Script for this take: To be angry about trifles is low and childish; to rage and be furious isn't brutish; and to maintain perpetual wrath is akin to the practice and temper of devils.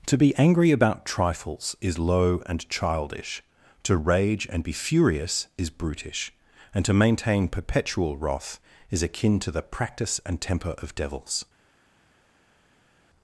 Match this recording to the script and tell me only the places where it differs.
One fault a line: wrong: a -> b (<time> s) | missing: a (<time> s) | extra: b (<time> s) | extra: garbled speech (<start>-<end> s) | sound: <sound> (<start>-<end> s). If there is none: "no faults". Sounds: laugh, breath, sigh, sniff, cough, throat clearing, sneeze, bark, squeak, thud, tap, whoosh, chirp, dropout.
wrong: isn't -> is (5.6 s)